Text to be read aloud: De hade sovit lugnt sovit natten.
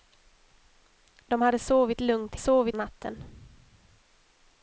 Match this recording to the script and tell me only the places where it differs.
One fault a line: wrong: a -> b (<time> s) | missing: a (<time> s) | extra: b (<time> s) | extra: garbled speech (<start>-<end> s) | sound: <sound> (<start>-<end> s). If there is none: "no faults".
no faults